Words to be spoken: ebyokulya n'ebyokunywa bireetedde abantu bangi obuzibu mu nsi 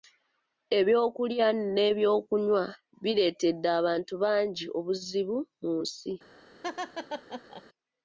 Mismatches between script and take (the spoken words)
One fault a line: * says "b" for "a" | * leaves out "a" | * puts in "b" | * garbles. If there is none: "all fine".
all fine